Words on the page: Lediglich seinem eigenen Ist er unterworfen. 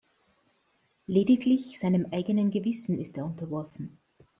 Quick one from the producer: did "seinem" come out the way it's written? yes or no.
yes